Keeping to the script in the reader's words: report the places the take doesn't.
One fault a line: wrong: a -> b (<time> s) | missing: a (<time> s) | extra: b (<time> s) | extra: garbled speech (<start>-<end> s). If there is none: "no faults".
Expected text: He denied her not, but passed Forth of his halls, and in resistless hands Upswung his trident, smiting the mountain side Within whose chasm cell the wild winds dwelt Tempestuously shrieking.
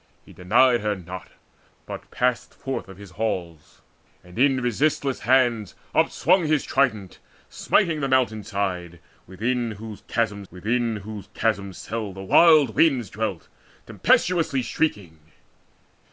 extra: Within whose chasm (10.5 s)